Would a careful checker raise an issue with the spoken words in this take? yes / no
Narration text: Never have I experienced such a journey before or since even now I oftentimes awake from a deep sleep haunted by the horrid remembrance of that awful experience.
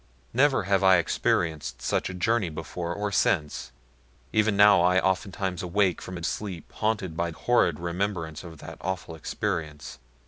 yes